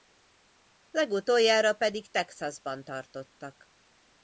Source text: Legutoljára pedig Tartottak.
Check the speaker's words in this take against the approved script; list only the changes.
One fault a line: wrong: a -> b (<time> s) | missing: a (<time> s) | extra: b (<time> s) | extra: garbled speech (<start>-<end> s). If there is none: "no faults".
extra: Texasban (2.1 s)